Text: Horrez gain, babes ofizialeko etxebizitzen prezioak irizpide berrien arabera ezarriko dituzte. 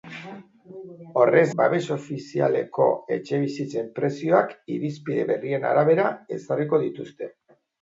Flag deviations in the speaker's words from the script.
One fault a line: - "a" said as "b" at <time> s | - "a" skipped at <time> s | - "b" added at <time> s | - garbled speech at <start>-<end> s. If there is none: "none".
- "gain" skipped at 1.5 s